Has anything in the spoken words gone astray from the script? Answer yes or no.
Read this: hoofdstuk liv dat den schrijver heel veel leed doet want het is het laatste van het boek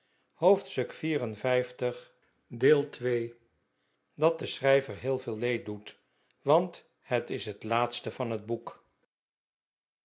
no